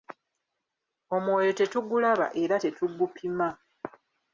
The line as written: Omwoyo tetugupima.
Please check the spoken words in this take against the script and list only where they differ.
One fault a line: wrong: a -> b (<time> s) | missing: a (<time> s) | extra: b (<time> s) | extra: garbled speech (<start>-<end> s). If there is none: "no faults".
extra: tetugulaba era (1.6 s)